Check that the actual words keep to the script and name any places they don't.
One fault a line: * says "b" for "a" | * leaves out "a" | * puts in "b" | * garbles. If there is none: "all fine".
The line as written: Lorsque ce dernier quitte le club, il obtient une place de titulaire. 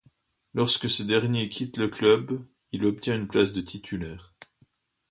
all fine